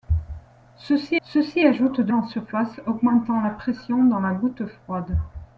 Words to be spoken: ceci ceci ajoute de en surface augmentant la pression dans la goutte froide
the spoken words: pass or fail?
pass